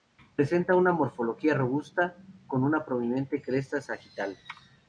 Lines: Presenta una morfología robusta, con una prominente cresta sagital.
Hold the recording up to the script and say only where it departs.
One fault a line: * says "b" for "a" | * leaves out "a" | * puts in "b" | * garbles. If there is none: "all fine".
all fine